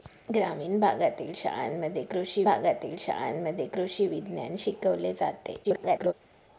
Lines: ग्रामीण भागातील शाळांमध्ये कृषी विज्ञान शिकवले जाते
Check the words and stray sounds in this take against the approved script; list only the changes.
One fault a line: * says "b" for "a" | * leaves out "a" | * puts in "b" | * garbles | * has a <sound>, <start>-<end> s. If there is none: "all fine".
* puts in "भागातील शाळांमध्ये कृषी"
* garbles